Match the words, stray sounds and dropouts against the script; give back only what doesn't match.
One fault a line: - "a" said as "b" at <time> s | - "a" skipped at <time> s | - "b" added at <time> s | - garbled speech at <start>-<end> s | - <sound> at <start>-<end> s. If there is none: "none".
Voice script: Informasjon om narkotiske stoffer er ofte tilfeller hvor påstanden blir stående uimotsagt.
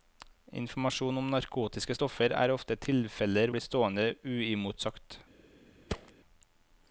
- "hvor påstanden" skipped at 3.5 s
- thud at 5.9-6.1 s